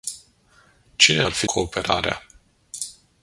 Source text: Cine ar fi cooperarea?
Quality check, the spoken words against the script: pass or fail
pass